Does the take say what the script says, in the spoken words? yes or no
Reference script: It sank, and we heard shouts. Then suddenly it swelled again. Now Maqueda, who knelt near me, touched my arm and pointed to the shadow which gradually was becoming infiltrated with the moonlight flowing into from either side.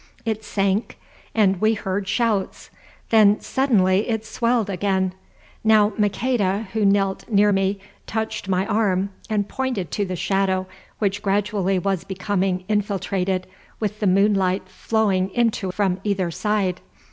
yes